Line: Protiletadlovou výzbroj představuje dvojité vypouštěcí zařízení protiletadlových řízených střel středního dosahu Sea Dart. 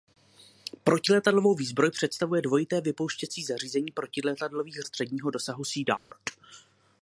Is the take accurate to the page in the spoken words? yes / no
no